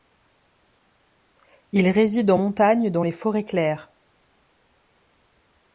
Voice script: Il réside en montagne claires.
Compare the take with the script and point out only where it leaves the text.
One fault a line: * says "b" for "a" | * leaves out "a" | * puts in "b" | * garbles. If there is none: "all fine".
* puts in "dans les forêts"